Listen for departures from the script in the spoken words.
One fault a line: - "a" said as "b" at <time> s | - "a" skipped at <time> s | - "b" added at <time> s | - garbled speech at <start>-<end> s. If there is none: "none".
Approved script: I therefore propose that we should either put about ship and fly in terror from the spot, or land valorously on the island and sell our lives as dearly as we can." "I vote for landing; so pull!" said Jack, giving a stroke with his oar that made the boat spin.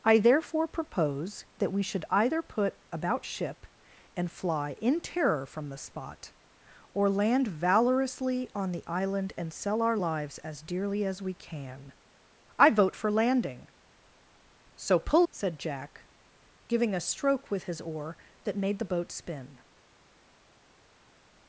none